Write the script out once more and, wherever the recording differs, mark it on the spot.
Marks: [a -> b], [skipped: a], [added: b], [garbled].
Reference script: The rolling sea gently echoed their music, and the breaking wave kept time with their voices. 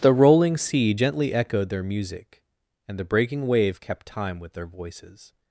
The rolling sea gently echoed their music, and the breaking wave kept time with their voices.